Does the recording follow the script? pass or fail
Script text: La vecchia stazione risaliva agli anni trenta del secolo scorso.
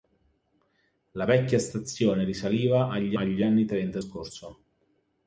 fail